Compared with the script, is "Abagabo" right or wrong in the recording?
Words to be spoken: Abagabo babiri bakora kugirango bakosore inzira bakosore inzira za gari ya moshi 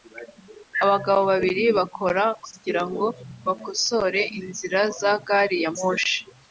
right